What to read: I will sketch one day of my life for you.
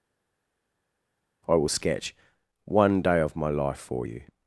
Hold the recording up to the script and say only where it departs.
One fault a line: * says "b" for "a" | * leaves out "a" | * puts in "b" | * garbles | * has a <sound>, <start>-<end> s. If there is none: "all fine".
all fine